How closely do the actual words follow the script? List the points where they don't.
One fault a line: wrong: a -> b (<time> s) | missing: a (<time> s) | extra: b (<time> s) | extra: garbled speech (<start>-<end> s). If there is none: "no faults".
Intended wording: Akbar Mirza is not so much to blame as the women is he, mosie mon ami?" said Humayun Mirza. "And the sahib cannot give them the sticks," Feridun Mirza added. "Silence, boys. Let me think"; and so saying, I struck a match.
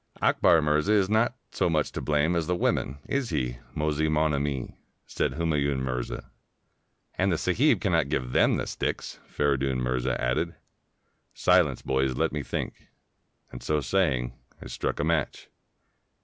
no faults